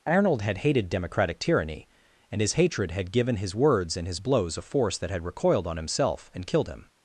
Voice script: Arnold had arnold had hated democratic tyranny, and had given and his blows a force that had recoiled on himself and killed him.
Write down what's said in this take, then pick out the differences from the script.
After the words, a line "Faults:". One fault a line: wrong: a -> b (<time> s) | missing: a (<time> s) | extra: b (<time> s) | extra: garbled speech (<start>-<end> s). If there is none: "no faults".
Arnold had hated democratic tyranny, and his hatred had given his words and his blows a force that had recoiled on himself and killed him.
Faults:
missing: arnold had (0.6 s)
extra: his hatred (2.4 s)
extra: his words (3.4 s)